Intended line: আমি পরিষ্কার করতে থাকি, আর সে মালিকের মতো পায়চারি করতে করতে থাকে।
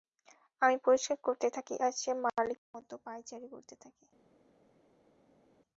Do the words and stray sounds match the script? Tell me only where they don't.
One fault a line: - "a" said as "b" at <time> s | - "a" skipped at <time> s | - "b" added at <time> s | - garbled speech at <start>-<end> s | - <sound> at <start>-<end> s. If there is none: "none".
- "করতে" skipped at 3.7 s